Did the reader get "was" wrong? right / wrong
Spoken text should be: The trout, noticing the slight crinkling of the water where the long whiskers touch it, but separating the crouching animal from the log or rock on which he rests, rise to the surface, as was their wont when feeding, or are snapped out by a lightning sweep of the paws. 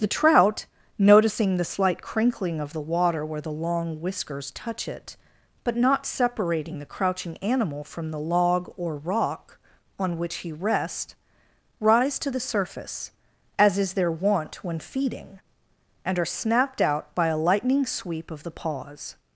wrong